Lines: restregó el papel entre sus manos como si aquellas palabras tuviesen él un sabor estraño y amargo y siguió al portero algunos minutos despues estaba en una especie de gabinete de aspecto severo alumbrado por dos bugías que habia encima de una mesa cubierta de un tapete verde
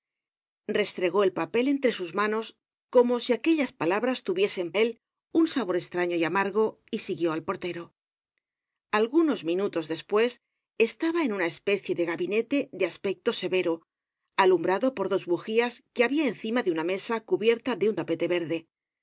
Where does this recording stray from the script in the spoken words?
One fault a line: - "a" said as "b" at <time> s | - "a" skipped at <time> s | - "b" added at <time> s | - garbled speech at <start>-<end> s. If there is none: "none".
none